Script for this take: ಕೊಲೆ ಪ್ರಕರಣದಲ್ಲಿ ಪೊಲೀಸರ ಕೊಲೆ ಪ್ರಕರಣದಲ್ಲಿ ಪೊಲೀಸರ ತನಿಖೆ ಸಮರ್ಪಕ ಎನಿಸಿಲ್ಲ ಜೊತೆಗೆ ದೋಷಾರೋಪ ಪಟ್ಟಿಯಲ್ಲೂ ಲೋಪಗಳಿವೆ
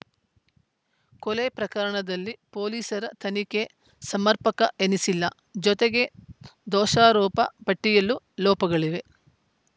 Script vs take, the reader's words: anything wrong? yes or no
yes